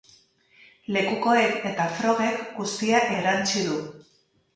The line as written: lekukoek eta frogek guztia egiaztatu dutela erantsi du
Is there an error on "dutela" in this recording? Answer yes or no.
yes